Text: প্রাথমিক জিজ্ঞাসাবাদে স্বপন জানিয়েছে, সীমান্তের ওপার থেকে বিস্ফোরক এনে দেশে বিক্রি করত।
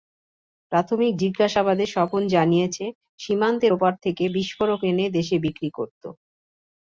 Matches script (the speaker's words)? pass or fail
pass